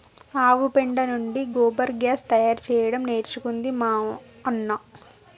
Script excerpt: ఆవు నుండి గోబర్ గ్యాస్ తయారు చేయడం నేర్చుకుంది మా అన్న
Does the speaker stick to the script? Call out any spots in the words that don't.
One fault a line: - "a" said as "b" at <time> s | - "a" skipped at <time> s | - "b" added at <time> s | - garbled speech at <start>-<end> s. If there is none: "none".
- "పెండ" added at 0.8 s